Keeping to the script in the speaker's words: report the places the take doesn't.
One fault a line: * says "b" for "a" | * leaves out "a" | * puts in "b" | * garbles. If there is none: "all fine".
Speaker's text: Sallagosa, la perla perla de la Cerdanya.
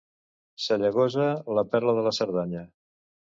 * leaves out "perla"